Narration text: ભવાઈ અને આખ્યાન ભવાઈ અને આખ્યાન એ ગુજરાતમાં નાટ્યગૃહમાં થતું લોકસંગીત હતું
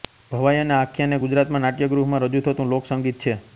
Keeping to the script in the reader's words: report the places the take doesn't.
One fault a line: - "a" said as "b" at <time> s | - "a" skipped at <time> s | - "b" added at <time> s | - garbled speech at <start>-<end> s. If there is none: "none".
- "ભવાઈ અને આખ્યાન" skipped at 1.1 s
- "રજૂ" added at 2.3 s
- "હતું" said as "છે" at 3.2 s